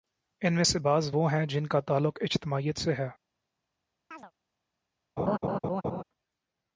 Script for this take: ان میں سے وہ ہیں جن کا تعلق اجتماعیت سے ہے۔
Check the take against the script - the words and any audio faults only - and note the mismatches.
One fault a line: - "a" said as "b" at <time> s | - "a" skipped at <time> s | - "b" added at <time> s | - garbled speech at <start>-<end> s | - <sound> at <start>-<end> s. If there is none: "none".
- "بعض" added at 0.8 s
- chirp at 4.1-4.3 s
- laugh at 5.2-6.0 s